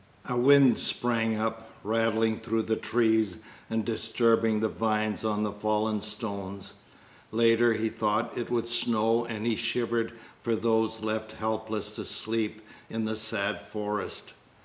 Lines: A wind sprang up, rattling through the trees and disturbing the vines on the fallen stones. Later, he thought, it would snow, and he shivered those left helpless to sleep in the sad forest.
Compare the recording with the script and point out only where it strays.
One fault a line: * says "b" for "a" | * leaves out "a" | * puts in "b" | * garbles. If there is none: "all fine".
* puts in "for"